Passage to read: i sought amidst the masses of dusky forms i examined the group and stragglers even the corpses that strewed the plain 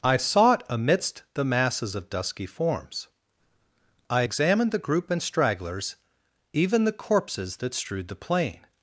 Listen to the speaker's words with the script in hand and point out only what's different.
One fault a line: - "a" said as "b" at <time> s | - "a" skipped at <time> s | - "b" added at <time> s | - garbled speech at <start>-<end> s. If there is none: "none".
none